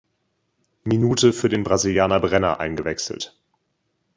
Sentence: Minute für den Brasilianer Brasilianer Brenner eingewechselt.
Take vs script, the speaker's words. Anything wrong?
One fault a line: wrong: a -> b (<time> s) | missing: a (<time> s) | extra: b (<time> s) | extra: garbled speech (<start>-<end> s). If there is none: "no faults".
missing: Brasilianer (2.2 s)